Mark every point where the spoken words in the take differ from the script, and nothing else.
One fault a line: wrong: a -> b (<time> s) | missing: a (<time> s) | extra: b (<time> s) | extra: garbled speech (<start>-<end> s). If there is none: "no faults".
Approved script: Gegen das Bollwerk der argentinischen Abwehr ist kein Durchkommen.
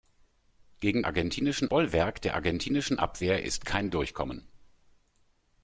wrong: das -> argentinischen (1.1 s)